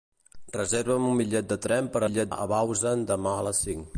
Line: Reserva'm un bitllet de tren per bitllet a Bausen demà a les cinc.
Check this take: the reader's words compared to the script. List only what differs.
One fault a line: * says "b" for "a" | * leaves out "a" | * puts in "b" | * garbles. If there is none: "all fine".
all fine